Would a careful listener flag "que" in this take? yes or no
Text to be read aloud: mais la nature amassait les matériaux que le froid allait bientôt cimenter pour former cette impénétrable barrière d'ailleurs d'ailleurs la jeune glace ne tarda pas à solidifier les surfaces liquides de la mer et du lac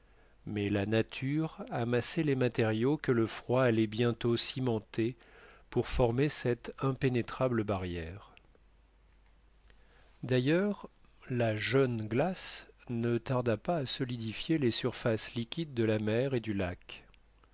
no